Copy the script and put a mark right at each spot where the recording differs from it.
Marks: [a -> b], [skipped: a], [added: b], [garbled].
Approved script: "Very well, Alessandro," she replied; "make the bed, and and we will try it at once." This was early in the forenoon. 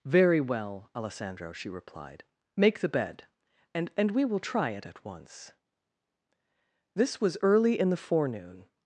"Very well, Alessandro," she replied; "make the bed, and and we will try it at once." This was early in the forenoon.